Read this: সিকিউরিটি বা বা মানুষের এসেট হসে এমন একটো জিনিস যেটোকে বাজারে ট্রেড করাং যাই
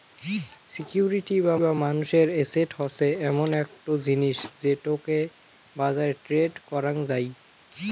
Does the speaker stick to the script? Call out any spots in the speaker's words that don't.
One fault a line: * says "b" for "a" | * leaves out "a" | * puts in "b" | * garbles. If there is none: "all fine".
all fine